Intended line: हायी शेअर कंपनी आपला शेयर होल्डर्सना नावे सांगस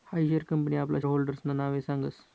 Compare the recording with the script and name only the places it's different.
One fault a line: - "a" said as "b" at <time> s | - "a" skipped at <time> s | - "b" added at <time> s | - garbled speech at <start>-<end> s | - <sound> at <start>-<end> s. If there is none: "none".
- "शेयर" skipped at 1.0 s